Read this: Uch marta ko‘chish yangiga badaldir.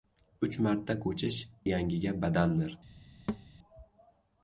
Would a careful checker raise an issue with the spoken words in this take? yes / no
no